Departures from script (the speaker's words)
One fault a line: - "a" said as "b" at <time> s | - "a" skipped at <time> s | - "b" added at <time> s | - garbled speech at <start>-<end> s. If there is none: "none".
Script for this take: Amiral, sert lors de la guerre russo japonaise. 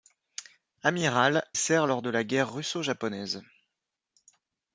none